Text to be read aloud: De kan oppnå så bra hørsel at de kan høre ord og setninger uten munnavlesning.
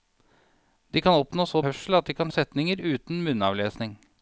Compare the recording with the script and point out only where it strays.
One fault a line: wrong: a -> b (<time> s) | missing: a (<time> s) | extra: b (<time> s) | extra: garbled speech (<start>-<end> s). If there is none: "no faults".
missing: bra (1.6 s)
missing: høre ord (2.3 s)